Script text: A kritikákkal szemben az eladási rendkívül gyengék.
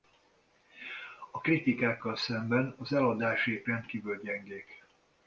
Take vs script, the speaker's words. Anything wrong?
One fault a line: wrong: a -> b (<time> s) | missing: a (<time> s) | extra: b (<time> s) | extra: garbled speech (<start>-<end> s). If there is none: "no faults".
no faults